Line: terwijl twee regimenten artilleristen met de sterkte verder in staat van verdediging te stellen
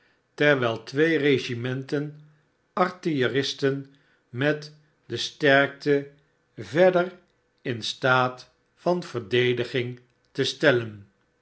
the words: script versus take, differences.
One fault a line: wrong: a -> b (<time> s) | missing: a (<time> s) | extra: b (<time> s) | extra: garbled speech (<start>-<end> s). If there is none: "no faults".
no faults